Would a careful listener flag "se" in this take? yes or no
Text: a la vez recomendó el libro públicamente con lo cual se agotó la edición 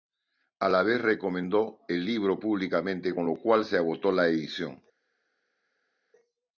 no